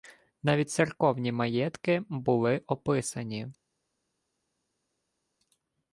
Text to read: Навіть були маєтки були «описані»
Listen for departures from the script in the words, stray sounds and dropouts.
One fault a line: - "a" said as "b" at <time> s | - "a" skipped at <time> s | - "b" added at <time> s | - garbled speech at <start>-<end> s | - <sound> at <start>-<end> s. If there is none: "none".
- "були" said as "церковні" at 0.7 s